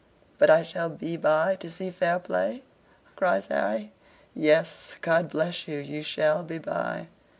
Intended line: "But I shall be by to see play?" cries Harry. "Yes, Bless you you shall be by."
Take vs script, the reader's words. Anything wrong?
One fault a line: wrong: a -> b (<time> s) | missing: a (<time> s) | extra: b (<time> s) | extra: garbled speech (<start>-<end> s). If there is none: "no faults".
extra: fair (1.9 s)
extra: God (5.0 s)